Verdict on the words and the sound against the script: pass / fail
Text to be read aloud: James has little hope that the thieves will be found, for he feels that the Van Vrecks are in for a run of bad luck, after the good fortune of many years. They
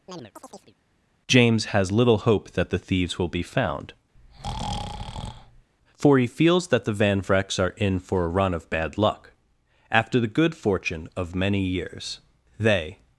fail